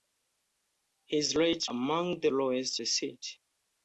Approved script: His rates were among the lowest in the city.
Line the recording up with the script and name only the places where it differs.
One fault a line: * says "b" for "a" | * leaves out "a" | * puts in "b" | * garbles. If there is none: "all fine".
* leaves out "were"
* leaves out "in"